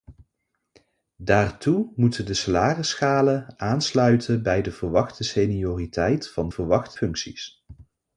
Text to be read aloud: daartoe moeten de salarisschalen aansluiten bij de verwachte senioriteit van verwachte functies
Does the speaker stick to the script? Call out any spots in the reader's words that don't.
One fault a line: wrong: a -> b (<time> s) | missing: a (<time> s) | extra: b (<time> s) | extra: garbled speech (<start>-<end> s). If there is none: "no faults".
no faults